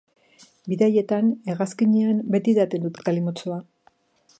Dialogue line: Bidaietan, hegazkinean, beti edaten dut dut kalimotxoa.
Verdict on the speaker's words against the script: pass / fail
pass